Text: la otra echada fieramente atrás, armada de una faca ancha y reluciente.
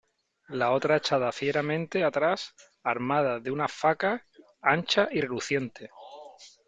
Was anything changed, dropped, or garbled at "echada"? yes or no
no